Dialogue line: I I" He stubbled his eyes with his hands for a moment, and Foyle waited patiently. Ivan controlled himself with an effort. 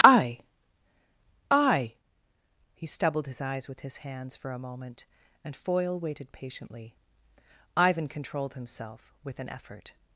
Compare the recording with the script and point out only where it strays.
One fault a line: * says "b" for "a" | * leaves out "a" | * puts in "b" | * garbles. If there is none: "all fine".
all fine